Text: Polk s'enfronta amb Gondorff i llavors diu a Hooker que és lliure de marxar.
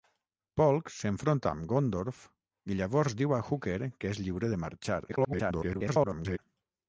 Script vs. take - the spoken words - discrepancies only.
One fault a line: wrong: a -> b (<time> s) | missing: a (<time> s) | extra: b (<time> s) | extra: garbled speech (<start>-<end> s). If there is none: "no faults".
extra: garbled speech (5.1-6.4 s)